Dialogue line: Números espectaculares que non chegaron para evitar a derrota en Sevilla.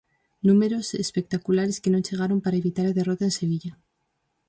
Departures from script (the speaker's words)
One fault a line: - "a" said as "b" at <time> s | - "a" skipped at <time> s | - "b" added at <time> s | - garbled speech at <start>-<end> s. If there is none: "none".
none